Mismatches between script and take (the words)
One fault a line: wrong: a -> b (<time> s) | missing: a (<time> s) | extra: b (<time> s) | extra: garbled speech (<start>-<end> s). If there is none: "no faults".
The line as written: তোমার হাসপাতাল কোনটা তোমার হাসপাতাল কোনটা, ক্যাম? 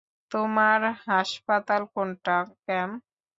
missing: তোমার হাসপাতাল কোনটা (2.4 s)